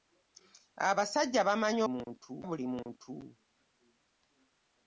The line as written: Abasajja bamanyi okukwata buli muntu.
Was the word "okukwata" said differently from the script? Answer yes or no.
yes